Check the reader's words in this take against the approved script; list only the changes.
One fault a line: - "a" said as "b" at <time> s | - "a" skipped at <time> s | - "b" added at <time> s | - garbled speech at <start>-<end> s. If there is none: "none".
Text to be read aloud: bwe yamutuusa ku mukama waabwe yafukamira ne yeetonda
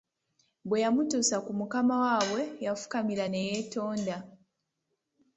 none